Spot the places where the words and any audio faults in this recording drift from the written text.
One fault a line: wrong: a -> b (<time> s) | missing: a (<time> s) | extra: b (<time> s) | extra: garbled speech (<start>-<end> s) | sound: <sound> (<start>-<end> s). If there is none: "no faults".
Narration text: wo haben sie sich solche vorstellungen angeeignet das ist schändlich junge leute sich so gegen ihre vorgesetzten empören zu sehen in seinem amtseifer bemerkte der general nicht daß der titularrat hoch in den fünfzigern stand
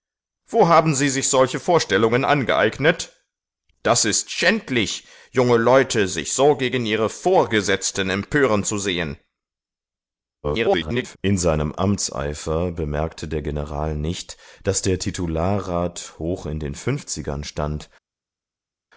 extra: garbled speech (10.4-11.2 s)